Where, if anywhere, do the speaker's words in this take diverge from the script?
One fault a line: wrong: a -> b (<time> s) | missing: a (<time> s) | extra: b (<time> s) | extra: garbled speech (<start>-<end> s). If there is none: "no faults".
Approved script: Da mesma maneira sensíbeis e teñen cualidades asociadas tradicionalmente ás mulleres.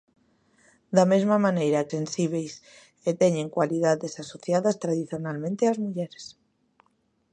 no faults